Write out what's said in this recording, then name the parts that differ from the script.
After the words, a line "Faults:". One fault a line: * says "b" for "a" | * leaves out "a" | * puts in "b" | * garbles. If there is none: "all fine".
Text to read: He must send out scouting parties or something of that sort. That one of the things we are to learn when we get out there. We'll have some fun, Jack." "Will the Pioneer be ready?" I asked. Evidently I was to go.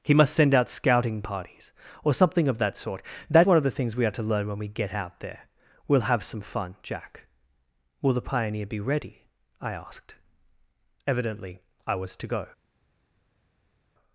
He must send out scouting parties or something of that sort. That one of the things we are to learn when we get out there. We'll have some fun, Jack." "Will the Pioneer be ready?" I asked. Evidently I was to go.
Faults:
all fine